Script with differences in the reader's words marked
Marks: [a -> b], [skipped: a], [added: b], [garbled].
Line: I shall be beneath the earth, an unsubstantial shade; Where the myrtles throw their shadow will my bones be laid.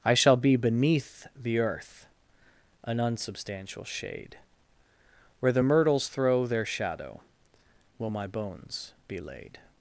I shall be beneath the earth, an unsubstantial shade; Where the myrtles throw their shadow will my bones be laid.